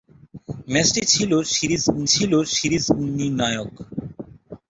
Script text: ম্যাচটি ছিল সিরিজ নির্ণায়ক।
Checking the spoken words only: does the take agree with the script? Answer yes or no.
no